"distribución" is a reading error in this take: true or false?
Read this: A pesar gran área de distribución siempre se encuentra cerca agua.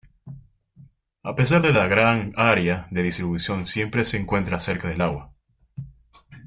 false